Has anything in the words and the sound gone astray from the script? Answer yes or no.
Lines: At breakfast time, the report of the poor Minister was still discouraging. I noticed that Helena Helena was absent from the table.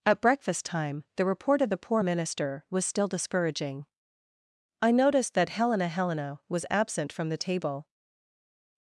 no